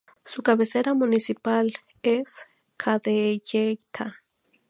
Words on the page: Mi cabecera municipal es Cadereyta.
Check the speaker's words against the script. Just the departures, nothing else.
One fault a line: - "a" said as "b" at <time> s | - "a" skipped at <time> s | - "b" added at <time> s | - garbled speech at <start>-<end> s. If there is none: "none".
- "Mi" said as "Su" at 0.2 s